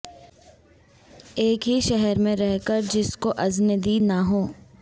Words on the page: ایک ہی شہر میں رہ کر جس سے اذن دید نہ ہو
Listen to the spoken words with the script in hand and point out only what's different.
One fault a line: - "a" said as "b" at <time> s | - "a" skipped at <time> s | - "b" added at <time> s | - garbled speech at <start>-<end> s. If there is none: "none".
- "سے" said as "کو" at 3.2 s